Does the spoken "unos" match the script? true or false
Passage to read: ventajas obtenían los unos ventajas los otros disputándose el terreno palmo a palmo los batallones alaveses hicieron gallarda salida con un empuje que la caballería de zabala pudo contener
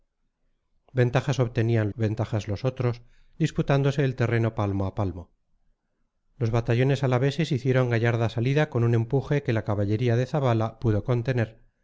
false